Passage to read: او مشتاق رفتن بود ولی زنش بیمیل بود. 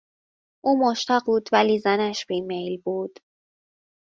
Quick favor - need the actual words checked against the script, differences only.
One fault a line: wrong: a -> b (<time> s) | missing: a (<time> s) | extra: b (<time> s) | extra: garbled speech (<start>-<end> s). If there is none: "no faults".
missing: رفتن (1.3 s)